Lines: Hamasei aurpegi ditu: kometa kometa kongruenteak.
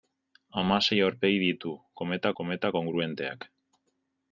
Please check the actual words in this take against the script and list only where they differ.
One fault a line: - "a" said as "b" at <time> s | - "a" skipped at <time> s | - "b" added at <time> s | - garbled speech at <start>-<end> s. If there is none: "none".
none